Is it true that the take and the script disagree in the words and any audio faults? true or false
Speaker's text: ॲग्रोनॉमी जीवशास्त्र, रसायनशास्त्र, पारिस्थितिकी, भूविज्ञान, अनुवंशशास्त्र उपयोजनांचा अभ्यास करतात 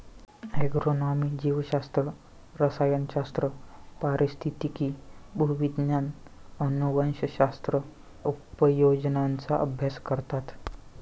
false